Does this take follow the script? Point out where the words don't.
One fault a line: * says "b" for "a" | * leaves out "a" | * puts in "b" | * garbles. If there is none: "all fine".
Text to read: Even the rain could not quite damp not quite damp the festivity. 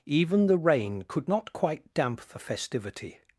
* leaves out "not quite damp"